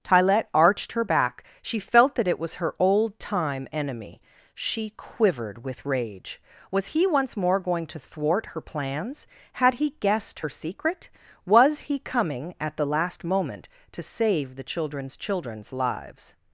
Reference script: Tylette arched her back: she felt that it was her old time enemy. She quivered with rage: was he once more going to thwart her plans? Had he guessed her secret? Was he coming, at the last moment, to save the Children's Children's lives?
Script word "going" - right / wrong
right